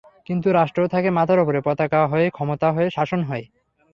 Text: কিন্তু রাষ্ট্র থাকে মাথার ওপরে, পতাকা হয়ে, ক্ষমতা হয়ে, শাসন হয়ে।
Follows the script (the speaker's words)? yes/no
yes